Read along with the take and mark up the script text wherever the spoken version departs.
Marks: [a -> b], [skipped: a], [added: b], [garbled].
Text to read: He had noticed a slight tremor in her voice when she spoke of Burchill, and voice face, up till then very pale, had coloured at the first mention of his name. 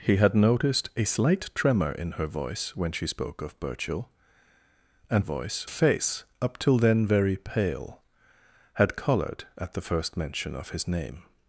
He had noticed a slight tremor in her voice when she spoke of Burchill, and voice face, up till then very pale, had coloured at the first mention of his name.